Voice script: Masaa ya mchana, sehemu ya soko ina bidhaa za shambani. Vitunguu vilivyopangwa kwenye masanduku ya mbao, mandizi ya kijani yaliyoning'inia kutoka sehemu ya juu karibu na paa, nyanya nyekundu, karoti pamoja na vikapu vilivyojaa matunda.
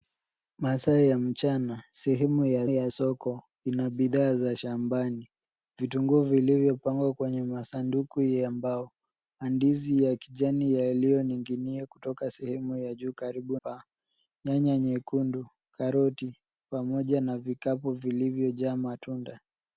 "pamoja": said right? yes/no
yes